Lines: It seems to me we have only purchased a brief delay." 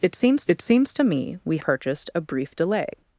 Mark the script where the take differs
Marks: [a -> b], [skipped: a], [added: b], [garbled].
It seems [added: it seems] to me we [skipped: have only] purchased a brief delay."